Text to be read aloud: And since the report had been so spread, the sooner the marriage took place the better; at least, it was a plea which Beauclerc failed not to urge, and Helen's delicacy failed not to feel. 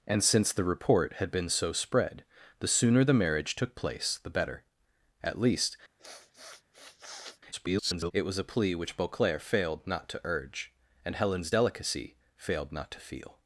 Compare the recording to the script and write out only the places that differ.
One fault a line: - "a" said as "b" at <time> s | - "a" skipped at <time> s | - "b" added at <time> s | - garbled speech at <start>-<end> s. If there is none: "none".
- garbled speech at 7.5-8.1 s